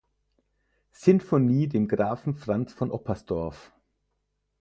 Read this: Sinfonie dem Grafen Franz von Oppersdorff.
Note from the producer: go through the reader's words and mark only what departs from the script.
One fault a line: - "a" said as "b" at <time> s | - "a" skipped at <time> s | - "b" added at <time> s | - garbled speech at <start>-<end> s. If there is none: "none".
none